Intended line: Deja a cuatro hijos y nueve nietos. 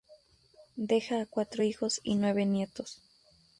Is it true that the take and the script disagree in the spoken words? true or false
false